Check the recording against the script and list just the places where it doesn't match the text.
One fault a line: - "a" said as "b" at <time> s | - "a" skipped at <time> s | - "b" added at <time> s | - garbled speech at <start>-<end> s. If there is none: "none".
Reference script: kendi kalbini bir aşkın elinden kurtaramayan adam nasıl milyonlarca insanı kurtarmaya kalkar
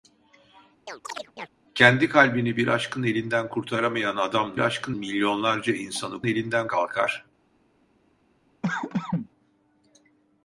- "nasıl" said as "aşkın" at 4.6 s
- "kurtarmaya" said as "elinden" at 6.2 s